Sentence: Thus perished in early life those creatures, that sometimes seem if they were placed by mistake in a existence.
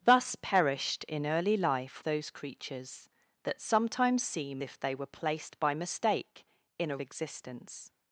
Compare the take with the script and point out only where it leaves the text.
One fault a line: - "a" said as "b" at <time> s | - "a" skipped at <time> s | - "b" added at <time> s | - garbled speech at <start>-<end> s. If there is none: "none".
none